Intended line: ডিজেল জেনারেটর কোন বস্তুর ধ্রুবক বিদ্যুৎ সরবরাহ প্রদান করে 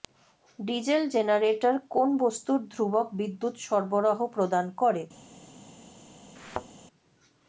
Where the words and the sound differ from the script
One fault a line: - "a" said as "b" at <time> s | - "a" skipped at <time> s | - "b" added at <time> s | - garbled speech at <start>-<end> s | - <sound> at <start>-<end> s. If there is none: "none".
- thud at 6.4-6.7 s